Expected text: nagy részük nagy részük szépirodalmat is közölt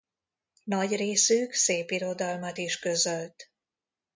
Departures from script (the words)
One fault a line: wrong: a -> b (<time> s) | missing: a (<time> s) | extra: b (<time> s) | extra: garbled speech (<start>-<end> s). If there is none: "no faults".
missing: nagy részük (1.5 s)